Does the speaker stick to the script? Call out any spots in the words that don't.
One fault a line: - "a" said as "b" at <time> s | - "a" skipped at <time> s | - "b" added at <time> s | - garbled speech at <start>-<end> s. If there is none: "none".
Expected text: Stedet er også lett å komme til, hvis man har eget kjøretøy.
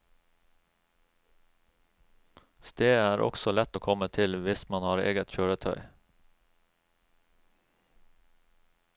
none